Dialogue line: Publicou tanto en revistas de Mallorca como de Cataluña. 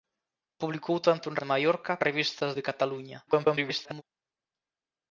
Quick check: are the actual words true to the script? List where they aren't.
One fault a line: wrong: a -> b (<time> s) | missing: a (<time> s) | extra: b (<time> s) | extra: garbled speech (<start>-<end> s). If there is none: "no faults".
missing: revistas (1.4 s)
wrong: como -> revistas (2.1 s)
extra: garbled speech (3.3-4.0 s)